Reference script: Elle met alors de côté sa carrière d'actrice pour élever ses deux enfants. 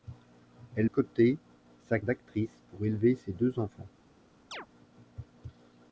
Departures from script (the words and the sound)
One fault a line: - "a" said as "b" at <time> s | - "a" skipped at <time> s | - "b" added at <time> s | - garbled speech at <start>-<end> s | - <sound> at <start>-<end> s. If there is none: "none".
- "met alors de" skipped at 0.9 s
- "carrière" skipped at 2.0 s
- chirp at 4.5-4.7 s